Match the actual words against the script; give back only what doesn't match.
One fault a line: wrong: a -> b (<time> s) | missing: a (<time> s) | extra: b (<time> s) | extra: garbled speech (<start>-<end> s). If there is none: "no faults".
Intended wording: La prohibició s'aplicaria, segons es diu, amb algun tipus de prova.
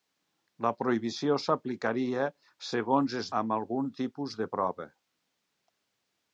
missing: diu (3.3 s)